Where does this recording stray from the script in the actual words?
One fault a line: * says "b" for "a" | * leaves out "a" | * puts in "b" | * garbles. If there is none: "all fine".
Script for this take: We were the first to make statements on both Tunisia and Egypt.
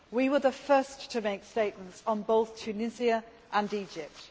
all fine